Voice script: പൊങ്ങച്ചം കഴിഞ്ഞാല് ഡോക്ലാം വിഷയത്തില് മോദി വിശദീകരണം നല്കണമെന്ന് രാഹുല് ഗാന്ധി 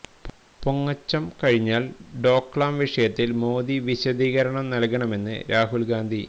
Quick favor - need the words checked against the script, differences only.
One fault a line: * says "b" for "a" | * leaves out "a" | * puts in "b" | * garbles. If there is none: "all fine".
all fine